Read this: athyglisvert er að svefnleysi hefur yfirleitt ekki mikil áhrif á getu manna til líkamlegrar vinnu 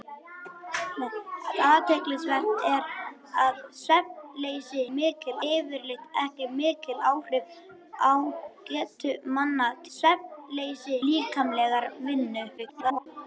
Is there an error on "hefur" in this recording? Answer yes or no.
yes